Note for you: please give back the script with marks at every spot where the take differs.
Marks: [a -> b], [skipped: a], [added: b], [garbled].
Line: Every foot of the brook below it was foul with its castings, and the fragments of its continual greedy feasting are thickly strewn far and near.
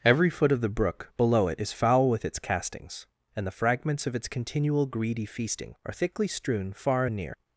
Every foot of the brook below it [was -> is] foul with its castings, and the fragments of its continual greedy feasting are thickly strewn far and near.